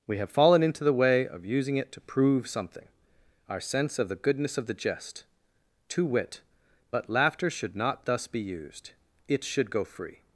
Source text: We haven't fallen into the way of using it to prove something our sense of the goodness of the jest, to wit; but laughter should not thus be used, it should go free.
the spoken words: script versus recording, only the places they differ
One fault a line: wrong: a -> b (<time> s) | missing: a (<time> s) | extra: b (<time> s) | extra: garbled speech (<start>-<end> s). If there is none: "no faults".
wrong: haven't -> have (0.2 s)